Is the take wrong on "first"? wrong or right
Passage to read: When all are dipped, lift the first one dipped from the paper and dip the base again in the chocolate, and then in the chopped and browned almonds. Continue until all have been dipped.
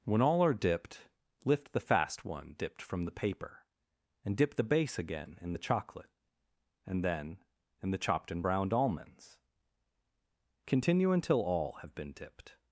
wrong